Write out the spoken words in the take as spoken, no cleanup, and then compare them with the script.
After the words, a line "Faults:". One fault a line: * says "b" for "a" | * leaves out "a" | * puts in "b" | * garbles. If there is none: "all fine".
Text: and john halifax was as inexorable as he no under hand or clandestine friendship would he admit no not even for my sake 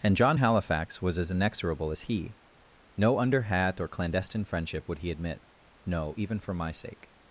and john halifax was as inexorable as he no under hat or clandestine friendship would he admit no even for my sake
Faults:
* says "hat" for "hand"
* leaves out "not"